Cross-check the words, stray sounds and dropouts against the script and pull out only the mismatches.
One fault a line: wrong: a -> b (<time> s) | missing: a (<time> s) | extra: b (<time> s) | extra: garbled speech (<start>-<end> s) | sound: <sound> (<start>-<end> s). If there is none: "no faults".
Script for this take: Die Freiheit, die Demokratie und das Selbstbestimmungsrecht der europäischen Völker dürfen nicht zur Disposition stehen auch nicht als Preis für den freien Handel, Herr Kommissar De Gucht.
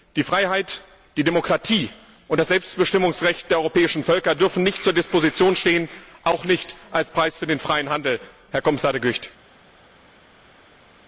no faults